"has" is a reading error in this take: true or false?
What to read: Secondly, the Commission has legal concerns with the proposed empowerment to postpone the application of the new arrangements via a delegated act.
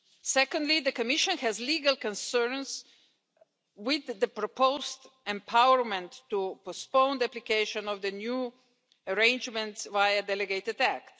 false